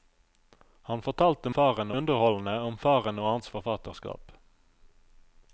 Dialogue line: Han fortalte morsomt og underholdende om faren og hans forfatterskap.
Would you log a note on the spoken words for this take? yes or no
yes